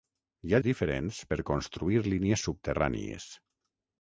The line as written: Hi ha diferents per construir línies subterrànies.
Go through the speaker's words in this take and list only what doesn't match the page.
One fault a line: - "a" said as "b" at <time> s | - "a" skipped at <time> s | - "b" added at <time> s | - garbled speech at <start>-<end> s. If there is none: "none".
none